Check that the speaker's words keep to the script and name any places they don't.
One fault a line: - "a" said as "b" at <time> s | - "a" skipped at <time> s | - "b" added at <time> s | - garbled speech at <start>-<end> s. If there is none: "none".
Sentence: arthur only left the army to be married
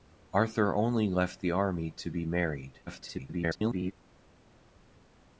- garbled speech at 2.9-3.9 s